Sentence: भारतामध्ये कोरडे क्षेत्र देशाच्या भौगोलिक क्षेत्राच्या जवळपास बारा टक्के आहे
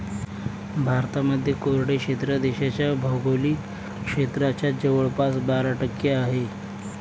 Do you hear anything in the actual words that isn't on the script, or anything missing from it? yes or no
no